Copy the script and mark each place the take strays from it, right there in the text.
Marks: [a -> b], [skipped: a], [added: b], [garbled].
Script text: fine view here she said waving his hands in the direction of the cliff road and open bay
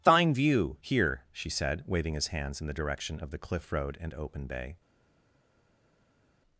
fine view here she said waving his hands in the direction of the cliff road and open bay